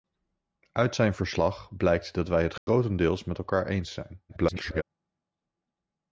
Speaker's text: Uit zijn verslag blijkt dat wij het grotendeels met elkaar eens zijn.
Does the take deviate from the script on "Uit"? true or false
false